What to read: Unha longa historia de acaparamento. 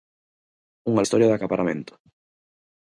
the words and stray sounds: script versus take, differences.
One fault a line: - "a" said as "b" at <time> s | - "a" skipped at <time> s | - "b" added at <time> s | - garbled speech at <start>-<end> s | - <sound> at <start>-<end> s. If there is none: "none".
- "longa" skipped at 1.1 s